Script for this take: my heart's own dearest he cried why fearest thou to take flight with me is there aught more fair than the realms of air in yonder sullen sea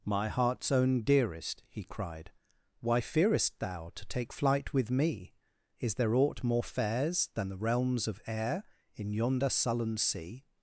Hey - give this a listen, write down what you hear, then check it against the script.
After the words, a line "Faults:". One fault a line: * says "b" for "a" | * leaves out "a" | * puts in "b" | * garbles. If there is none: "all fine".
my heart's own dearest he cried why fearest thou to take flight with me is there aught more fairs than the realms of air in yonder sullen sea
Faults:
* says "fairs" for "fair"